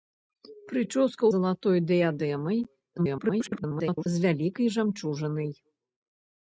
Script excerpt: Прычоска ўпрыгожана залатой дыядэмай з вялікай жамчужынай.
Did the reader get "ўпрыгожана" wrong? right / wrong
wrong